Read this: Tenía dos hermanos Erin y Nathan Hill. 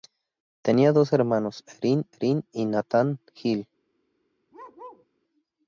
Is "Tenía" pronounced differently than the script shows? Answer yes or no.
no